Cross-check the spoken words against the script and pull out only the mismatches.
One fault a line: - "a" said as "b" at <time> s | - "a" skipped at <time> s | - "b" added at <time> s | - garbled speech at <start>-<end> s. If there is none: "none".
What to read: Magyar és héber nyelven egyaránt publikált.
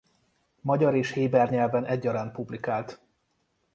none